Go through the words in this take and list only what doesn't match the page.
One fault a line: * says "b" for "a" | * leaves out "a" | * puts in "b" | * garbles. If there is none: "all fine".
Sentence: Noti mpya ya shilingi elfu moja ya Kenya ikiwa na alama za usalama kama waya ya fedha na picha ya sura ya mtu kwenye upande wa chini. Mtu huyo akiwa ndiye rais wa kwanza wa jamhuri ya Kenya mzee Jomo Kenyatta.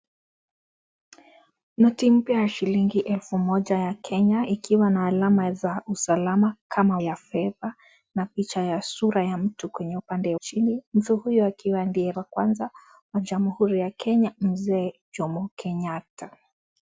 * leaves out "waya"
* leaves out "wa"
* leaves out "rais"